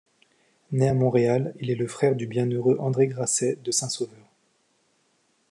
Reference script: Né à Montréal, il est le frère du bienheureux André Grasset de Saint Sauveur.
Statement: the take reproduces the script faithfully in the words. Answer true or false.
true